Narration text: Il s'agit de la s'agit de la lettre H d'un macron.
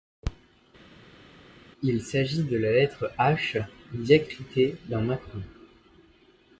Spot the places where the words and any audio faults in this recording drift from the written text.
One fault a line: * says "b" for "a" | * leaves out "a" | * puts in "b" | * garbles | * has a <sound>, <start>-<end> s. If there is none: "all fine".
* leaves out "s'agit de la"
* puts in "diacritée"